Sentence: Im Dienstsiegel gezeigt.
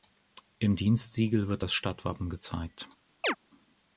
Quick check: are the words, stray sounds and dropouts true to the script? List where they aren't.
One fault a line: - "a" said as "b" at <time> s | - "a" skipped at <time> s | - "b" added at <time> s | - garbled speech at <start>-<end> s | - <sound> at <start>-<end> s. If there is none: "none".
- "wird das Stadtwappen" added at 1.5 s
- chirp at 3.2-3.4 s